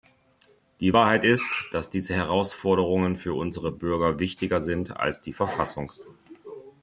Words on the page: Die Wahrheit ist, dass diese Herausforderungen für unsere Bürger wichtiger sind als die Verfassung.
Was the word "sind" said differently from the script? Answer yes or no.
no